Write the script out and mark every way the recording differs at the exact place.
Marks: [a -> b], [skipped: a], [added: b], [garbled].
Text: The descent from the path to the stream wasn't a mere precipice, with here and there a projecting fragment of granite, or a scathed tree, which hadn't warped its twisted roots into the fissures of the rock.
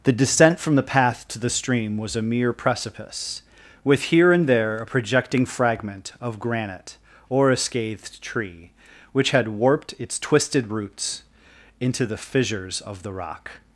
The descent from the path to the stream [wasn't -> was] a mere precipice, with here and there a projecting fragment of granite, or a scathed tree, which [hadn't -> had] warped its twisted roots into the fissures of the rock.